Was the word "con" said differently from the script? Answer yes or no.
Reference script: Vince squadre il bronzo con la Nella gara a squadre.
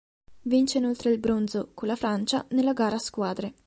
no